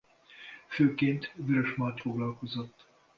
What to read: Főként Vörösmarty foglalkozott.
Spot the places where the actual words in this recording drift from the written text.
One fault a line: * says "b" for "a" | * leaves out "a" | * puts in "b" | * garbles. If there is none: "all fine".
all fine